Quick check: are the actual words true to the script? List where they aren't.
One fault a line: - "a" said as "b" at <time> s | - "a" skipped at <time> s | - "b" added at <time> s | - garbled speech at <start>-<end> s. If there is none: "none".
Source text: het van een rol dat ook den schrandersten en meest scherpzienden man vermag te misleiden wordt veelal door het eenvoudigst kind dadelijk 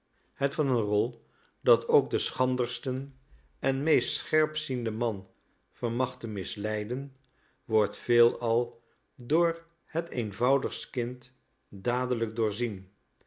none